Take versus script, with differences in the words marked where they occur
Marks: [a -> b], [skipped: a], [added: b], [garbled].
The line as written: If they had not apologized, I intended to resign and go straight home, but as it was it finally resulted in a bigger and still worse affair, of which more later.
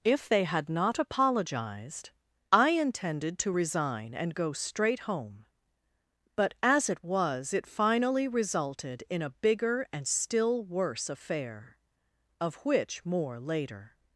If they had not apologized, I intended to resign and go straight home, but as it was it finally resulted in a bigger and still worse affair, of which more later.